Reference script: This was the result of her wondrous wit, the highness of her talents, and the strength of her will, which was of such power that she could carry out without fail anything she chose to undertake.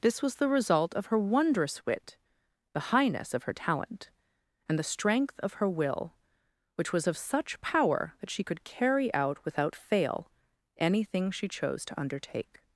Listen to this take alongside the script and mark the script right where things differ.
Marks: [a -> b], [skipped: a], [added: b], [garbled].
This was the result of her wondrous wit, the highness of her [talents, -> talent] and the strength of her will, which was of such power that she could carry out without fail anything she chose to undertake.